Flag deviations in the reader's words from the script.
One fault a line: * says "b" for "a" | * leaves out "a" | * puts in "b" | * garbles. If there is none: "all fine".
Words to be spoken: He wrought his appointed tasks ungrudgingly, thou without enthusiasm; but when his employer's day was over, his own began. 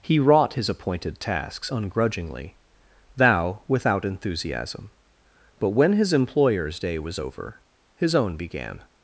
all fine